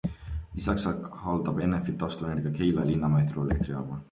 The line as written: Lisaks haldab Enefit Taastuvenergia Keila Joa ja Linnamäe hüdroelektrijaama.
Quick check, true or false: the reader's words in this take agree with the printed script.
false